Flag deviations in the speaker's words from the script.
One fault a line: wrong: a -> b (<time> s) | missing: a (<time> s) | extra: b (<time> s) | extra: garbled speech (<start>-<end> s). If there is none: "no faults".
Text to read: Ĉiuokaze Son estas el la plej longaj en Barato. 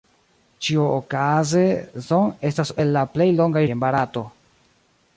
no faults